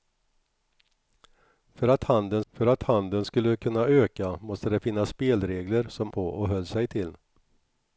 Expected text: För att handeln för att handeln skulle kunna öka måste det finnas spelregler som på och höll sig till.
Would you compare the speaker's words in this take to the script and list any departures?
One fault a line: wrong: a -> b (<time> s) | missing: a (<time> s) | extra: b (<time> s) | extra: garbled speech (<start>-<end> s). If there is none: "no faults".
no faults